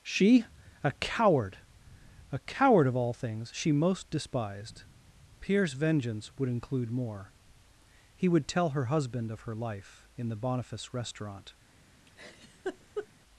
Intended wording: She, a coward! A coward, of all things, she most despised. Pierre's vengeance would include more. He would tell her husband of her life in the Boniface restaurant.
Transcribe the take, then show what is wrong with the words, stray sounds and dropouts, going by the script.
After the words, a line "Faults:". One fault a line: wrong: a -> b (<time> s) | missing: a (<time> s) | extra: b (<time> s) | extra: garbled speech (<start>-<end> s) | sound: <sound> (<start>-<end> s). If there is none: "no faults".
She, a coward! A coward, of all things, she most despised. Pierre's vengeance would include more. He would tell her husband of her life in the Boniface restaurant.
Faults:
sound: laugh (12.1-13.1 s)